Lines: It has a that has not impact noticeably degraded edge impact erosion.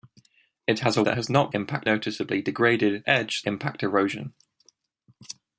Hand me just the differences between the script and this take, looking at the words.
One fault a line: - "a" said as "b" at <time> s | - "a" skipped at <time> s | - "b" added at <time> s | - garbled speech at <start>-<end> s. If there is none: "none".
none